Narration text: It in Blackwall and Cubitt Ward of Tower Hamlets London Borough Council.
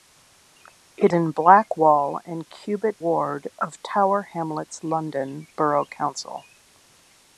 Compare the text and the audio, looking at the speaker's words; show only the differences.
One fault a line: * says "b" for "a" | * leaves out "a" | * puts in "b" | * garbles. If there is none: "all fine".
all fine